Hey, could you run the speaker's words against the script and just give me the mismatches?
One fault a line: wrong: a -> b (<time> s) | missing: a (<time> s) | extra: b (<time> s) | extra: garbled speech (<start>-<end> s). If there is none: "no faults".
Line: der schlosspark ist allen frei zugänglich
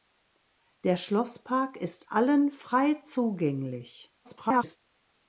extra: garbled speech (4.2-4.8 s)